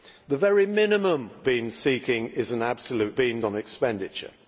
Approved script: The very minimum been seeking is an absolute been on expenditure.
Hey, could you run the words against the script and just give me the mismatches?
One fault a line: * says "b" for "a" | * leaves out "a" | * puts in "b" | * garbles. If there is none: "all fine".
all fine